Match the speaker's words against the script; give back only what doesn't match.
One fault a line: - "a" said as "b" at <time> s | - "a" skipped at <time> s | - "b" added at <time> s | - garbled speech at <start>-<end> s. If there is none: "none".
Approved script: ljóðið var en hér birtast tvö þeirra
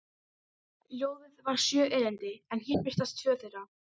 - "sjö erindi" added at 1.6 s